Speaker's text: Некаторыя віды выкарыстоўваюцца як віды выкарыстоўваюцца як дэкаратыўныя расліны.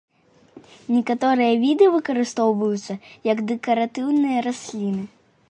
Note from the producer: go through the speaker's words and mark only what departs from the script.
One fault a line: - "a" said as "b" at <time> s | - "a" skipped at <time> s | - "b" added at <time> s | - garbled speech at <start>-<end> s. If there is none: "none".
- "віды выкарыстоўваюцца як" skipped at 3.5 s